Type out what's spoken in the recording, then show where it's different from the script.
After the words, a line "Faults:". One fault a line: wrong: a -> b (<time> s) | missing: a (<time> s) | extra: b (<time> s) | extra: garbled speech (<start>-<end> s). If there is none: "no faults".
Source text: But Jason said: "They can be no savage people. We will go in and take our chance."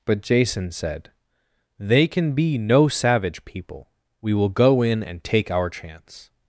But Jason said: "They can be no savage people. We will go in and take our chance."
Faults:
no faults